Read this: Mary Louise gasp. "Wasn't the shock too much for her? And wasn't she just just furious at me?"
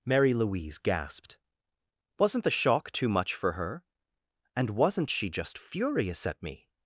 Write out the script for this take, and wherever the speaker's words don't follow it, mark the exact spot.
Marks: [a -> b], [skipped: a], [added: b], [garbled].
Mary Louise [gasp. -> gasped] "Wasn't the shock too much for her? And wasn't she just [skipped: just] furious at me?"